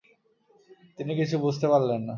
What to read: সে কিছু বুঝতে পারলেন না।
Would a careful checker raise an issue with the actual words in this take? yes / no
yes